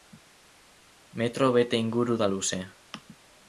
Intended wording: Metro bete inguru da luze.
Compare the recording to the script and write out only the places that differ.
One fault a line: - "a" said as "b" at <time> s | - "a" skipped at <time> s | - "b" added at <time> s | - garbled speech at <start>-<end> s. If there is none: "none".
none